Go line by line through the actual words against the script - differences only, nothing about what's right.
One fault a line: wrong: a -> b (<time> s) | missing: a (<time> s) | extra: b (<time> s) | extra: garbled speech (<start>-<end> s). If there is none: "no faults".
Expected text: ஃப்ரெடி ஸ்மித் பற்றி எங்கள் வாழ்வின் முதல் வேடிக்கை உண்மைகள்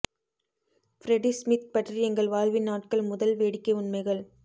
extra: நாட்கள் (2.7 s)